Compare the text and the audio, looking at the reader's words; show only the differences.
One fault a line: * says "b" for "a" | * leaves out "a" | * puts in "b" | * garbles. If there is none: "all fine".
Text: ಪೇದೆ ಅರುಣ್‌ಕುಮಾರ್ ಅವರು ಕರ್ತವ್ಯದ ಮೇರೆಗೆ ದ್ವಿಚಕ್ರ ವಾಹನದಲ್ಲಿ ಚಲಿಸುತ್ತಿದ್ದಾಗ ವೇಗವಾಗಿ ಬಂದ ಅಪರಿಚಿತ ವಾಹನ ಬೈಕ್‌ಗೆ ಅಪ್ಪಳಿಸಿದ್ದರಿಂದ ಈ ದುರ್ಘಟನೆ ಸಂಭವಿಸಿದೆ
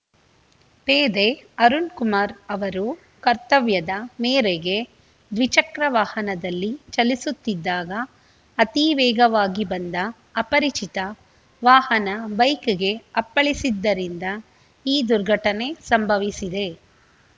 * puts in "ಅತಿ"